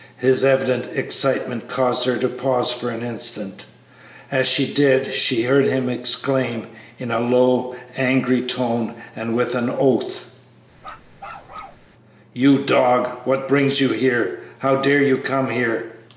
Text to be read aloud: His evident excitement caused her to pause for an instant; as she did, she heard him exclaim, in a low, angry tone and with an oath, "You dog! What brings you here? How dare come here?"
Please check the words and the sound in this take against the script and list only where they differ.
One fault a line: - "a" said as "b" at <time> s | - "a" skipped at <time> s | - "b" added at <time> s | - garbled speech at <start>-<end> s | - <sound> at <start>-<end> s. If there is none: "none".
- bark at 10.8-11.9 s
- "you" added at 15.0 s